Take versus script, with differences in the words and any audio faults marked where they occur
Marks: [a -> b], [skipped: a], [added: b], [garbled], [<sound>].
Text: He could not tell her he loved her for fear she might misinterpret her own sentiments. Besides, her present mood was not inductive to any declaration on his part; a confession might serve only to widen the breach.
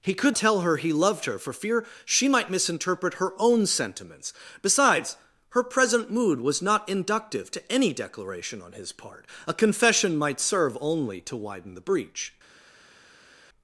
He could [skipped: not] tell her he loved her for fear she might misinterpret her own sentiments. Besides, her present mood was not inductive to any declaration on his part; a confession might serve only to widen the breach.